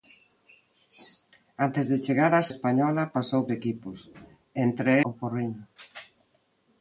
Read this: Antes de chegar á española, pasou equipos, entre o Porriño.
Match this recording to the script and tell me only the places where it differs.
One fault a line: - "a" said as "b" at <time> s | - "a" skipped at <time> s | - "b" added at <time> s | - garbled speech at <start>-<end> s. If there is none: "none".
none